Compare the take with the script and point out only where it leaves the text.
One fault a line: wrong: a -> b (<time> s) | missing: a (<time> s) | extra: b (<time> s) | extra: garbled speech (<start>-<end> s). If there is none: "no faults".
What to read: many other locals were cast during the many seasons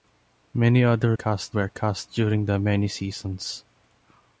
wrong: locals -> cast (1.1 s)